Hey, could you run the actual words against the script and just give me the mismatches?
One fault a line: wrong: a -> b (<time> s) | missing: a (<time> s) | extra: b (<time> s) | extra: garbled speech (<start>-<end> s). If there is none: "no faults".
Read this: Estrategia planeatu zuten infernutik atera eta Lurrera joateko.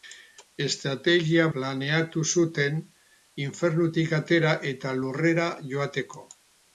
no faults